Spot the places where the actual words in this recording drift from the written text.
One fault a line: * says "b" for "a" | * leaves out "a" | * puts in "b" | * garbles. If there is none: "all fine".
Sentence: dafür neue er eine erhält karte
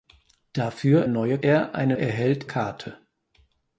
all fine